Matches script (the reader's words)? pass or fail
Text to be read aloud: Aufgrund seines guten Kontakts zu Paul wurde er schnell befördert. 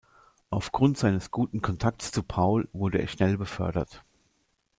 pass